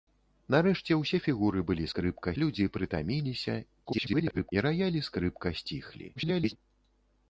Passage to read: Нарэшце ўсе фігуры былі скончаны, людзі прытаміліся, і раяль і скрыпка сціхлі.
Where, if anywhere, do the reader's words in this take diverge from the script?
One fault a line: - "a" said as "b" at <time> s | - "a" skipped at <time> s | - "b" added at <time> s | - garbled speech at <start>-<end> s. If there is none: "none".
- "скончаны" said as "скрыпка" at 1.9 s
- garbled speech at 3.8-4.5 s
- garbled speech at 6.2-6.6 s